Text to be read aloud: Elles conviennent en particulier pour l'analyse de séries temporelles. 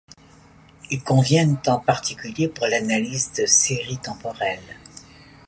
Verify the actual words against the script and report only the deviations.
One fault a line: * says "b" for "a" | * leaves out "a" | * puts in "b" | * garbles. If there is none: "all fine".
* says "Ils" for "Elles"